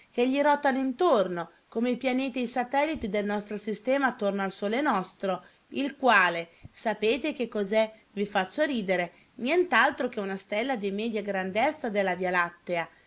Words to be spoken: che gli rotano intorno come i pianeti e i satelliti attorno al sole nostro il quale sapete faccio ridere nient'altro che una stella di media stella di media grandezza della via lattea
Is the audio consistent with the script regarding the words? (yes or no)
no